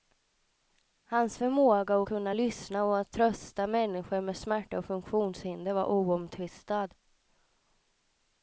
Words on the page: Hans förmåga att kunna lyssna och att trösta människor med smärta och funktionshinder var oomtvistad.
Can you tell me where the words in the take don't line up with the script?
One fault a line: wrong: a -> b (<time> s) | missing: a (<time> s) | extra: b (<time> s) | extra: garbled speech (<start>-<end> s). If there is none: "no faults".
no faults